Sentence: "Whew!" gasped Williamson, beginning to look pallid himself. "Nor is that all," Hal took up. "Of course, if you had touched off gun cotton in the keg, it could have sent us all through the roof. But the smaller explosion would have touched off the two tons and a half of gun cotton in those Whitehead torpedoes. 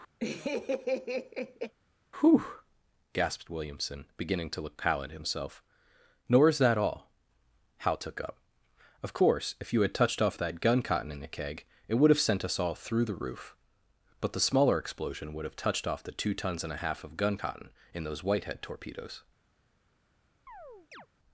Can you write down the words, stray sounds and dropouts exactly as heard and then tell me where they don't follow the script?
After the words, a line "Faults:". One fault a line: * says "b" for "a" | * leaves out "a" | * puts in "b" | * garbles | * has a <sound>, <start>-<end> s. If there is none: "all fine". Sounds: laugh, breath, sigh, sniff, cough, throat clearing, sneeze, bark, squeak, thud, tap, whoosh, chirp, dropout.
"Whew!" gasped Williamson, beginning to look pallid himself. "Nor is that all," Hal took up. "Of course, if you had touched off that gun cotton in the keg, it would have sent us all through the roof. But the smaller explosion would have touched off the two tons and a half of gun cotton in those Whitehead torpedoes.
Faults:
* has a laugh, 0.2-1.7 s
* puts in "that"
* says "would" for "could"
* has a chirp, 20.5-21.1 s